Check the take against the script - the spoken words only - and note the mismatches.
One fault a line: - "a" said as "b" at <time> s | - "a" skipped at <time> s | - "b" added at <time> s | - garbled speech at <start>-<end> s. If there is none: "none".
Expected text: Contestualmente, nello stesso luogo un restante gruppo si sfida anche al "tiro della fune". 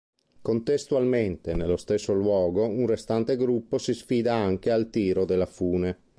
none